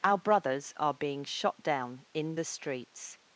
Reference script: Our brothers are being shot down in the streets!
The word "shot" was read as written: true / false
true